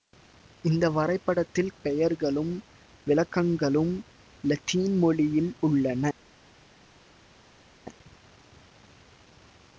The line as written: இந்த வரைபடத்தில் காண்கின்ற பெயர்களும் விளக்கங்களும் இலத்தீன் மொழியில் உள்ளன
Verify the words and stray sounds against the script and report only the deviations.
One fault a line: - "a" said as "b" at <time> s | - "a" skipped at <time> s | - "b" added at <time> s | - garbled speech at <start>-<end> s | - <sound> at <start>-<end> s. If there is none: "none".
- "காண்கின்ற" skipped at 1.7 s